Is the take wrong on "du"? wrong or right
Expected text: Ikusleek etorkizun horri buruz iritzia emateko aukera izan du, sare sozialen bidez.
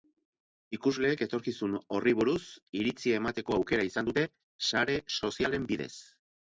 wrong